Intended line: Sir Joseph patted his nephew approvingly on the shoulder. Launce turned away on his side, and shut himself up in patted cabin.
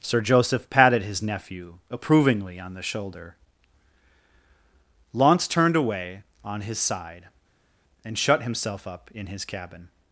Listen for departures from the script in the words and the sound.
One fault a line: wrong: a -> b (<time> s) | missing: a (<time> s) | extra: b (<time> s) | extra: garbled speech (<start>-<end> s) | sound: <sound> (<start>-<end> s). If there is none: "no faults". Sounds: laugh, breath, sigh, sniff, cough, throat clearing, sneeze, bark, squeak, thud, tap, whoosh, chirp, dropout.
wrong: patted -> his (9.3 s)